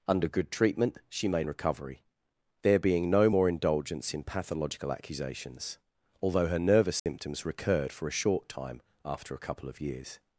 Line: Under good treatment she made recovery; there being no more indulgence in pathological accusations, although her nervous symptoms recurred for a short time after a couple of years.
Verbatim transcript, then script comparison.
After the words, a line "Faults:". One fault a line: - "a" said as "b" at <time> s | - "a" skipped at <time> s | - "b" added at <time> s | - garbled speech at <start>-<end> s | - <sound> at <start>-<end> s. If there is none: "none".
Under good treatment she made recovery; there being no more indulgence in pathological accusations, although her nervous symptoms recurred for a short time after a couple of years.
Faults:
- dropout at 7.0-7.1 s